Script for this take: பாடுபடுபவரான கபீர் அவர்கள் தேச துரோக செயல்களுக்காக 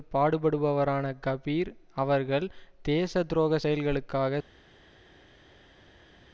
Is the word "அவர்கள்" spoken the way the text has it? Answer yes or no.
yes